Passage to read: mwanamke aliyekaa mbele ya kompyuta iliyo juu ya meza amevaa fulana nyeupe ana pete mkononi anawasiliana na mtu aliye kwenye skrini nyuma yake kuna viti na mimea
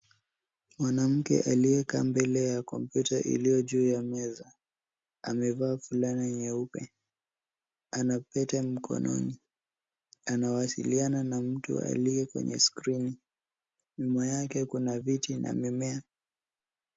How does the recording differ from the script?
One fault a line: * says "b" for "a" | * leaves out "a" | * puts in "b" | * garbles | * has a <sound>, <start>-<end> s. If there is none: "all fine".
all fine